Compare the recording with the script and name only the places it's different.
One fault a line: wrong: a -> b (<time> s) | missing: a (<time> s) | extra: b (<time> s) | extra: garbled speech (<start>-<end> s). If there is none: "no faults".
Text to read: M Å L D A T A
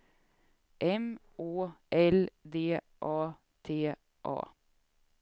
no faults